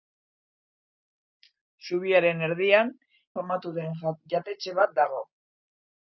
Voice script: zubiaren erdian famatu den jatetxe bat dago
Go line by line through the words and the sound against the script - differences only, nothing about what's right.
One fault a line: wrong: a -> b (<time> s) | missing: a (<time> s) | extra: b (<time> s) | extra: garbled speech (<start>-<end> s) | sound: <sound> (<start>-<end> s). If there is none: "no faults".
no faults